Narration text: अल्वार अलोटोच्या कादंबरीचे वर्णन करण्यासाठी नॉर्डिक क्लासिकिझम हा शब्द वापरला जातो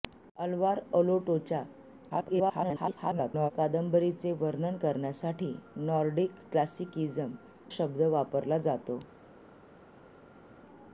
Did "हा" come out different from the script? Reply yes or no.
yes